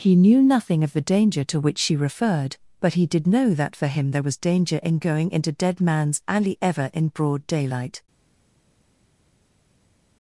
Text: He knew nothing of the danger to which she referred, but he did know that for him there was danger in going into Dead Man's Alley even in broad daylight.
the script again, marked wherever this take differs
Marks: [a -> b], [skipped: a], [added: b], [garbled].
He knew nothing of the danger to which she referred, but he did know that for him there was danger in going into Dead Man's Alley [even -> ever] in broad daylight.